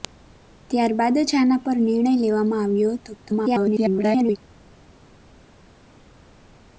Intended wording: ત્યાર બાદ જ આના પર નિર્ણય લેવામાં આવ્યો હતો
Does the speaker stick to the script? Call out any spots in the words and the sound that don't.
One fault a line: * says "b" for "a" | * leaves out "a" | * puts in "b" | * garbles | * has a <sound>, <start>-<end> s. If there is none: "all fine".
* garbles